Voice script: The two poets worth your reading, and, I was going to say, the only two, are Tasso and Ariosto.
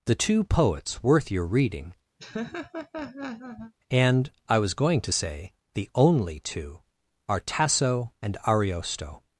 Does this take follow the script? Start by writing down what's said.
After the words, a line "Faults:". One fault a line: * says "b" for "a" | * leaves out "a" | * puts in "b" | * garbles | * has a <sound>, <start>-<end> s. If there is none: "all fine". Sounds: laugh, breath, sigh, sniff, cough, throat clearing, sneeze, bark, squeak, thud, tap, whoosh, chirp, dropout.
The two poets worth your reading, and, I was going to say, the only two, are Tasso and Ariosto.
Faults:
* has a laugh, 2.2-3.7 s